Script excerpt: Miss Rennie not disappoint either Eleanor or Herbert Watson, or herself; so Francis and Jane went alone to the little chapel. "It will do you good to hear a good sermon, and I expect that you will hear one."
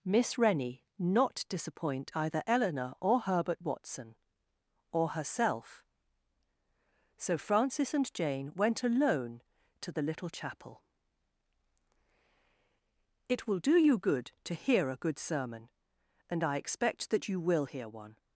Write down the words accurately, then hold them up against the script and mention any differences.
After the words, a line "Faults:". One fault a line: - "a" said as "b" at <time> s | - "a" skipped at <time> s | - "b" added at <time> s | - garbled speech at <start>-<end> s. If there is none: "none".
Miss Rennie not disappoint either Eleanor or Herbert Watson, or herself; so Francis and Jane went alone to the little chapel. "It will do you good to hear a good sermon, and I expect that you will hear one."
Faults:
none